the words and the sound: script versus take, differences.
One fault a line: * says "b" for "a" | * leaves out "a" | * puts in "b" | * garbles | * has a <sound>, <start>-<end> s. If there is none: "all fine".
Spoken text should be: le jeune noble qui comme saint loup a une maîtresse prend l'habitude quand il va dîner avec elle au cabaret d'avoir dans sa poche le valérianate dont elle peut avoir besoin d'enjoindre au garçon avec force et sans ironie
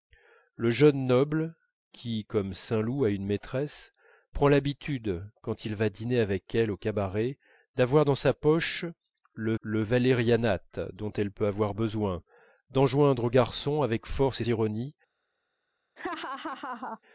* puts in "le"
* leaves out "sans"
* has a laugh, 16.0-17.0 s